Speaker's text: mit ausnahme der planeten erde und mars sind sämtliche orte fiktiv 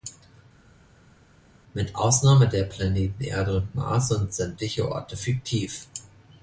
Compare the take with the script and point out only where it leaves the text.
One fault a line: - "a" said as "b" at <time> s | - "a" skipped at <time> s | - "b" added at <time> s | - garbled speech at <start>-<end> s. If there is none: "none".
none